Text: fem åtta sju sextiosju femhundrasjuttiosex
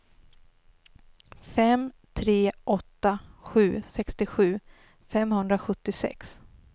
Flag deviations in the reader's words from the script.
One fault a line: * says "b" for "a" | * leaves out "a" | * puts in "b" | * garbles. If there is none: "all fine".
* puts in "tre"